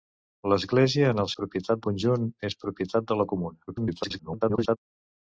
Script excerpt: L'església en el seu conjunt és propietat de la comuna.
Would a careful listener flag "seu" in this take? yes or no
yes